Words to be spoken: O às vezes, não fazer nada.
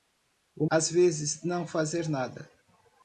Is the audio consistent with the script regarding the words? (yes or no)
yes